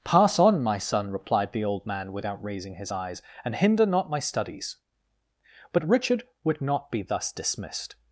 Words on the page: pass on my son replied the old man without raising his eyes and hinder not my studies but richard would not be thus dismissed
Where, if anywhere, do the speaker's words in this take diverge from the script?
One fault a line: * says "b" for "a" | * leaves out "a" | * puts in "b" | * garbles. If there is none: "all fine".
all fine